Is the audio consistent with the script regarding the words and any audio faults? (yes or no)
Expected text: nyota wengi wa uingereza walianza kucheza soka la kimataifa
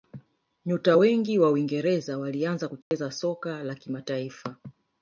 no